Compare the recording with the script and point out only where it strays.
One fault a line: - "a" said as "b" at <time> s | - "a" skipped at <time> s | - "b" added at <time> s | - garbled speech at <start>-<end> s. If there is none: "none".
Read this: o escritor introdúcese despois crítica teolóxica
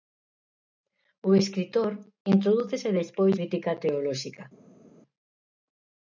none